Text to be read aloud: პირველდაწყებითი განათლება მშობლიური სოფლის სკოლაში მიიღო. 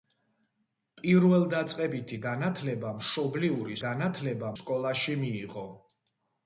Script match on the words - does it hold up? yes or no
no